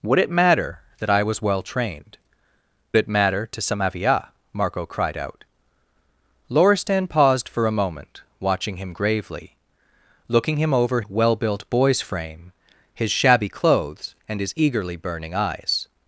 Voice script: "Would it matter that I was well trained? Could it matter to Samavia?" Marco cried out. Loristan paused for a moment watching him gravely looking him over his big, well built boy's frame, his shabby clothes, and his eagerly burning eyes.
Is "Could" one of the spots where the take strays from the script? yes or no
yes